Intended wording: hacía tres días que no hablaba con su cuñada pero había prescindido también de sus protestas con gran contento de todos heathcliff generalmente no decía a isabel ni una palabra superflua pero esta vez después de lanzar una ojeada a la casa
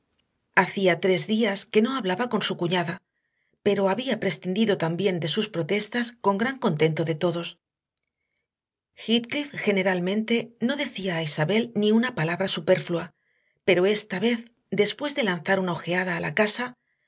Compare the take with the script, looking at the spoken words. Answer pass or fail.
pass